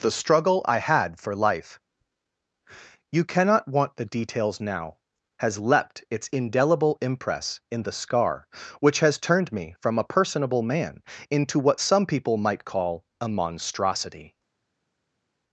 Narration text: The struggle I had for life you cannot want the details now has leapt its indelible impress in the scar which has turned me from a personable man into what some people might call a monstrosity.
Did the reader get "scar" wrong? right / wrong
right